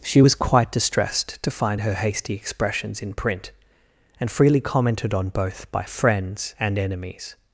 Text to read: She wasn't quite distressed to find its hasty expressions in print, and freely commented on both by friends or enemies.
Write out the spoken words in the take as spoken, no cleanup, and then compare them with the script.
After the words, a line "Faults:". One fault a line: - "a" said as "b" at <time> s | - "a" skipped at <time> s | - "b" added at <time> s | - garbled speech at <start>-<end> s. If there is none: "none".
She was quite distressed to find her hasty expressions in print, and freely commented on both by friends and enemies.
Faults:
- "wasn't" said as "was" at 0.2 s
- "its" said as "her" at 1.8 s
- "or" said as "and" at 6.6 s